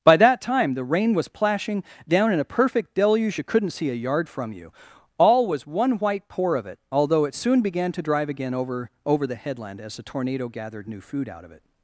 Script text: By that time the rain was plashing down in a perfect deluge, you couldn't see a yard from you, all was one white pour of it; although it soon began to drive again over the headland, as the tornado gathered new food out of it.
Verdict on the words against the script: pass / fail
fail